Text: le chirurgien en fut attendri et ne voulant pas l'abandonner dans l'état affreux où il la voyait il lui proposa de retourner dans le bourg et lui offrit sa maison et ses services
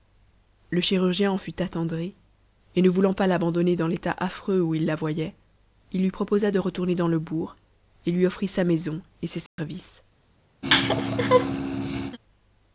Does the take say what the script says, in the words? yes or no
yes